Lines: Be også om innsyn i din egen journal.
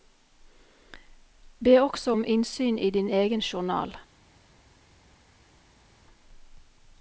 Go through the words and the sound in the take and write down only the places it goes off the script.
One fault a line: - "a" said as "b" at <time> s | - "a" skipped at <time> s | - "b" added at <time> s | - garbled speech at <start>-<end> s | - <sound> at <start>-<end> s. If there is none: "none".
none